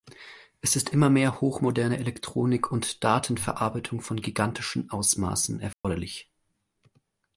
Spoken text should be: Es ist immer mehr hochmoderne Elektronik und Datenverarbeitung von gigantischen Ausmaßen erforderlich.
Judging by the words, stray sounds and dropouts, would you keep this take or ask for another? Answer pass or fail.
fail